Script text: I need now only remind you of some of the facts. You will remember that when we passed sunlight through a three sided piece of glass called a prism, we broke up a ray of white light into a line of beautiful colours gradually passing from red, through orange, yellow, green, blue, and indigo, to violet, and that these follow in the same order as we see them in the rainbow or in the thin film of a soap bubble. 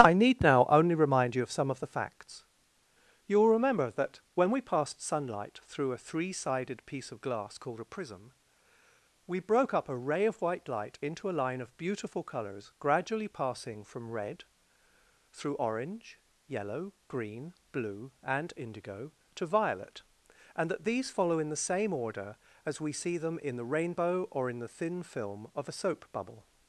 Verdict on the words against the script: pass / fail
pass